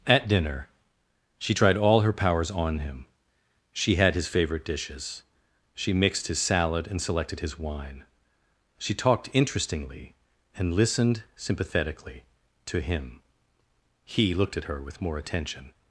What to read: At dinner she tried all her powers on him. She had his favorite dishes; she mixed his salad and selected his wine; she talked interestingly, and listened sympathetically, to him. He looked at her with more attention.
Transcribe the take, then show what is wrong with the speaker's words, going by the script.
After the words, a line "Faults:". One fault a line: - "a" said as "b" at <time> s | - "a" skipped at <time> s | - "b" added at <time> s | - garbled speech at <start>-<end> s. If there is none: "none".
At dinner she tried all her powers on him. She had his favorite dishes; she mixed his salad and selected his wine; she talked interestingly, and listened sympathetically, to him. He looked at her with more attention.
Faults:
none